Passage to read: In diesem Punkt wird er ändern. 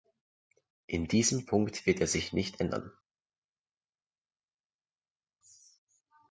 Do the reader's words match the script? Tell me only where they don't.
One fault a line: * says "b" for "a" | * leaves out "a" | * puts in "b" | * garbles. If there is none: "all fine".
* puts in "sich nicht"